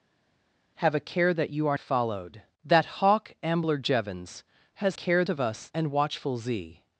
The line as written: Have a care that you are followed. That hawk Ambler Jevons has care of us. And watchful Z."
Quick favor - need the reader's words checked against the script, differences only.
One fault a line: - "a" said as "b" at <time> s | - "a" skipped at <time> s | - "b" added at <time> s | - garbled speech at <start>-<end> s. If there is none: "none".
none